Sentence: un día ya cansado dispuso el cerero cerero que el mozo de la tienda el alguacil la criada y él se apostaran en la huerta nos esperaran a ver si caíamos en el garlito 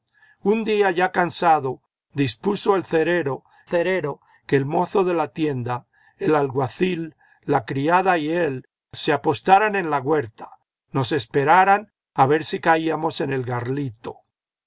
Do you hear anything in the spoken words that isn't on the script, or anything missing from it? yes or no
no